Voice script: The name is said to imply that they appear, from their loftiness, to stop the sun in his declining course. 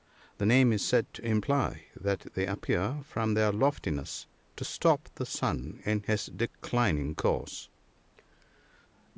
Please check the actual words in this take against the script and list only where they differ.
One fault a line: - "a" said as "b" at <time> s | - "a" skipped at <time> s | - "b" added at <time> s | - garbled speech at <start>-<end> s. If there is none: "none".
none